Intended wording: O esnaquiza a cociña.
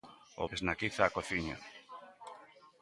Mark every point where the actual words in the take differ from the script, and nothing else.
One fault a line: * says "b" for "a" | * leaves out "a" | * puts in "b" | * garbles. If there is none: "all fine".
all fine